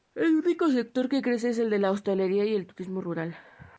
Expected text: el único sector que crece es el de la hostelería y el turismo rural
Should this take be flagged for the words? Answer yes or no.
no